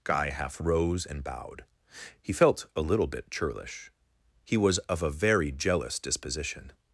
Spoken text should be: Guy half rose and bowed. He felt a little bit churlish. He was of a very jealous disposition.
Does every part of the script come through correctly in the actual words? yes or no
yes